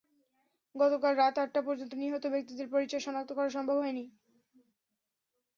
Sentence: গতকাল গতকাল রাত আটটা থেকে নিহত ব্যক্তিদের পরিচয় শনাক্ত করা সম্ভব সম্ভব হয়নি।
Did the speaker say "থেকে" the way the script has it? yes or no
no